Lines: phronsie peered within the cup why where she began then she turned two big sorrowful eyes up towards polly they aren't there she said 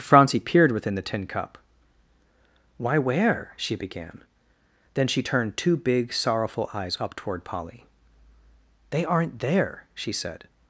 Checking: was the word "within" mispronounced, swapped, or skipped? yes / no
no